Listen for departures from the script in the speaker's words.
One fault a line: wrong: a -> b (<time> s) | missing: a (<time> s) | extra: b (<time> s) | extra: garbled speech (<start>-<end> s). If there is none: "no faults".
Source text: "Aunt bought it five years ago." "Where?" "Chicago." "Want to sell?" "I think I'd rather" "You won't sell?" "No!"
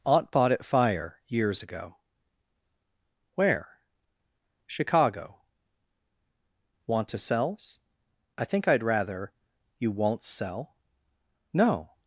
wrong: five -> fire (0.7 s)
wrong: sell -> sells (7.2 s)